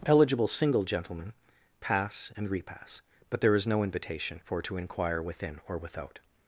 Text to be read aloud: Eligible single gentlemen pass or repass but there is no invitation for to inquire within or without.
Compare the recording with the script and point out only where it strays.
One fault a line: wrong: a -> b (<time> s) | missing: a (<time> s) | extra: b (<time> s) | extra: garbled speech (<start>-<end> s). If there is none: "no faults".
wrong: or -> and (2.4 s)